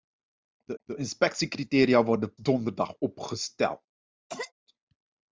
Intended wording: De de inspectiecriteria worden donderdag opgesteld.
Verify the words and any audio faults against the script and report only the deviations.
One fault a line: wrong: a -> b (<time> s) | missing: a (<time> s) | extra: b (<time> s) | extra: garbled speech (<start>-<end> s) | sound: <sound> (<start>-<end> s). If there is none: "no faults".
sound: cough (4.3-4.5 s)